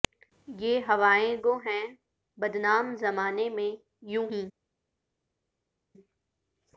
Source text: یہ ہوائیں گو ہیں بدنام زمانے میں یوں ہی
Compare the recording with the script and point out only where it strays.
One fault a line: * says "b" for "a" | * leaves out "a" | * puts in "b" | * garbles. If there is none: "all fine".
all fine